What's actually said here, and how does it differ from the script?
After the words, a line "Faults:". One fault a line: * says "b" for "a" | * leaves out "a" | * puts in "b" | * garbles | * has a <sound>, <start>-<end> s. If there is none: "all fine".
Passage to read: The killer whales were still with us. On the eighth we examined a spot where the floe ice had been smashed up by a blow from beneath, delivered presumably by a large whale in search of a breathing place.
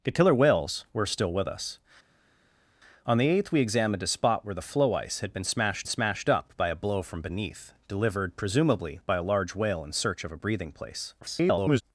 The killer whales were still with us. On the eighth we examined a spot where the floe ice had been smashed smashed up by a blow from beneath, delivered presumably by a large whale in search of a breathing place. [garbled]
Faults:
* puts in "smashed"
* garbles